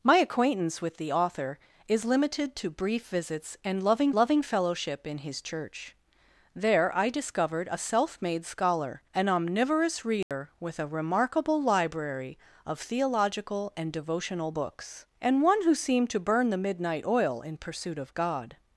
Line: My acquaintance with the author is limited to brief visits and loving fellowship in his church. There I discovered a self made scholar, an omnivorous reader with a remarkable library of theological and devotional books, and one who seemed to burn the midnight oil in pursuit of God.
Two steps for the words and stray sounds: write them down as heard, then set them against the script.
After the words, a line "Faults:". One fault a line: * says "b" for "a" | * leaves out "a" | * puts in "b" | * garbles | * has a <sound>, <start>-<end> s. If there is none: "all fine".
My acquaintance with the author is limited to brief visits and loving loving fellowship in his church. There I discovered a self made scholar, an omnivorous reader with a remarkable library of theological and devotional books, and one who seemed to burn the midnight oil in pursuit of God.
Faults:
* puts in "loving"
* has a dropout, 10.2-10.3 s